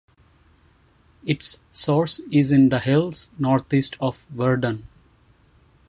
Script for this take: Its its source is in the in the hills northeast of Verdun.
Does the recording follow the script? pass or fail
fail